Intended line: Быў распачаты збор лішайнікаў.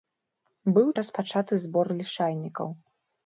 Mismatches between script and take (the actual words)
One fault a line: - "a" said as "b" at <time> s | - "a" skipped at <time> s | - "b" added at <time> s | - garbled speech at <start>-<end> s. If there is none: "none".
none